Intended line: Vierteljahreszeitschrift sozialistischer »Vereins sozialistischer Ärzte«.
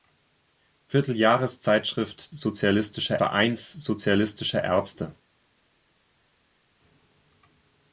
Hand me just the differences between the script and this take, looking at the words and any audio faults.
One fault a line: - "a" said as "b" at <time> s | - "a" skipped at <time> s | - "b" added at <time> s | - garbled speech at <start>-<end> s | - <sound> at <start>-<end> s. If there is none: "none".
none